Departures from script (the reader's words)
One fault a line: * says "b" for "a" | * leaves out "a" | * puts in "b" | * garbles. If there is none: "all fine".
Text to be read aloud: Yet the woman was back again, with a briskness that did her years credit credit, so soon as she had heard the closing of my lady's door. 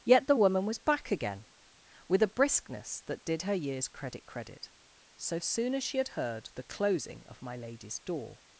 all fine